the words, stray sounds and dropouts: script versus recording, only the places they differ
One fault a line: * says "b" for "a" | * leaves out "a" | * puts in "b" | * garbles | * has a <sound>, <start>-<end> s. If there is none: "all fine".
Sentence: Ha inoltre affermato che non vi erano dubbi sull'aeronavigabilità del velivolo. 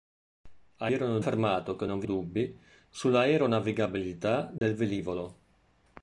* says "erano" for "inoltre"
* leaves out "erano"
* has a dropout, 4.6-4.6 s